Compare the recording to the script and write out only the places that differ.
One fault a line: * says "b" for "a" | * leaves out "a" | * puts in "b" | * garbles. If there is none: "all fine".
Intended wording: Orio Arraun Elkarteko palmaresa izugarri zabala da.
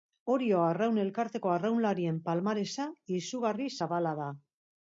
* puts in "arraunlarien"